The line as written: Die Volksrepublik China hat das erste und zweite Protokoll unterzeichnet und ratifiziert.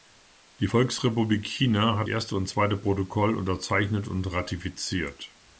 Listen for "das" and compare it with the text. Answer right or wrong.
wrong